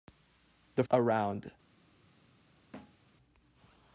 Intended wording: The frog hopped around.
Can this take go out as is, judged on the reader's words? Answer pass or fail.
fail